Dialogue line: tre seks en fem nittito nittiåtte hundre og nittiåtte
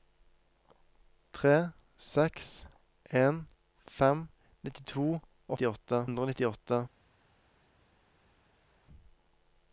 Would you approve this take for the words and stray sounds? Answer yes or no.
yes